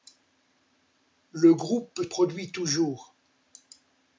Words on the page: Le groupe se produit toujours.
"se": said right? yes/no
no